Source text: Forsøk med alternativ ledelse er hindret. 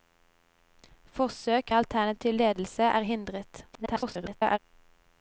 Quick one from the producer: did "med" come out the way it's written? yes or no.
no